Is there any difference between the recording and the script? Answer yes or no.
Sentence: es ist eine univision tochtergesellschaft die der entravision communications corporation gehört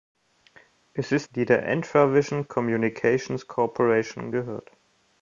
yes